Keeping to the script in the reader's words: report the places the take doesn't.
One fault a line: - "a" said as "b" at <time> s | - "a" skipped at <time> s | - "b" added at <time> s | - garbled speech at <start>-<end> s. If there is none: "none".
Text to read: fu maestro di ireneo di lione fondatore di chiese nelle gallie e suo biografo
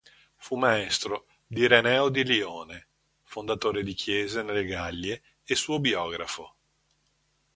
none